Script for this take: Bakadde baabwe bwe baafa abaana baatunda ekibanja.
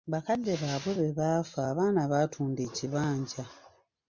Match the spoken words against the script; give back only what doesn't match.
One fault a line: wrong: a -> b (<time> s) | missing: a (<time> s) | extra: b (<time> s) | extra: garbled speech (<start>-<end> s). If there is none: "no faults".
no faults